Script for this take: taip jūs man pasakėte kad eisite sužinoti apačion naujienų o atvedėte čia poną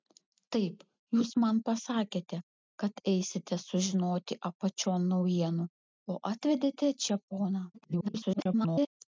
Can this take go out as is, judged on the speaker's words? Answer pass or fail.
fail